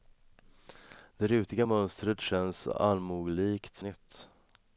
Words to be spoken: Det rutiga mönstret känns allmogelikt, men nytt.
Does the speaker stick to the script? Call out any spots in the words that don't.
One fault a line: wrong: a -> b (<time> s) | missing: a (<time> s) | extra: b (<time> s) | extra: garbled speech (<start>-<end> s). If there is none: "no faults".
missing: men (3.8 s)